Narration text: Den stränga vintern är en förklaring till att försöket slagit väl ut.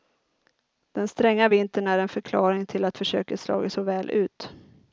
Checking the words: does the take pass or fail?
fail